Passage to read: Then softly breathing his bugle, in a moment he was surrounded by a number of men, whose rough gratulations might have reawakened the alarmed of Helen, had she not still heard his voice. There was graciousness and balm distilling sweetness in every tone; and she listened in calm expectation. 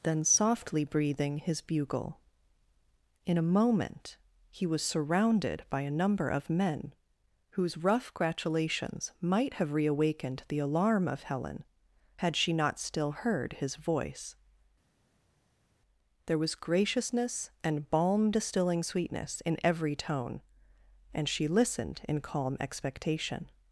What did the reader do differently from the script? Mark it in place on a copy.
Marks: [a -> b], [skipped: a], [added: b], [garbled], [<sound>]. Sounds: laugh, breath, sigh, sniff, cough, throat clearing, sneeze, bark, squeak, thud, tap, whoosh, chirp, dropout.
Then softly breathing his bugle, in a moment he was surrounded by a number of men, whose rough gratulations might have reawakened the [alarmed -> alarm] of Helen, had she not still heard his voice. There was graciousness and balm distilling sweetness in every tone; and she listened in calm expectation.